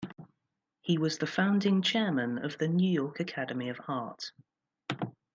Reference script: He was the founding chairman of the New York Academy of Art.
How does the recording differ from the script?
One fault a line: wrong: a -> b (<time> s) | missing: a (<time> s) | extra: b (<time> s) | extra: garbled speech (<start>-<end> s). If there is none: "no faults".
no faults